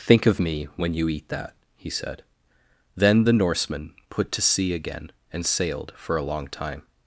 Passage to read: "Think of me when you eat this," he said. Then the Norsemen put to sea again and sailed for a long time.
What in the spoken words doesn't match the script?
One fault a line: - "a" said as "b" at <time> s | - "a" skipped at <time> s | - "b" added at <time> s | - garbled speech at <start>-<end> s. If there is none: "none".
- "this" said as "that" at 1.3 s